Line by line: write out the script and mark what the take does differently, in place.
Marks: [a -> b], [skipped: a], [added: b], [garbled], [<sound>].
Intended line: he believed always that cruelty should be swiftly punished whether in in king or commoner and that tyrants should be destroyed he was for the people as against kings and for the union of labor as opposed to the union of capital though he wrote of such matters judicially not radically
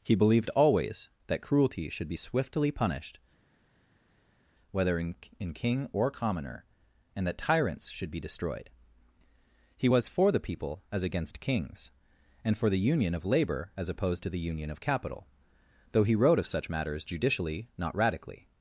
he believed always that cruelty should be swiftly punished whether in in king or commoner and that tyrants should be destroyed he was for the people as against kings and for the union of labor as opposed to the union of capital though he wrote of such matters judicially not radically